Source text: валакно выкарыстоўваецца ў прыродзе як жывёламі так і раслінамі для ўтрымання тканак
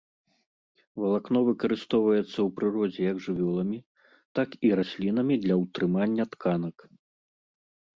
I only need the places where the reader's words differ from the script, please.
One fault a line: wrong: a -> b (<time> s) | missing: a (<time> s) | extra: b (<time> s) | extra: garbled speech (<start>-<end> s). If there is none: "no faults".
no faults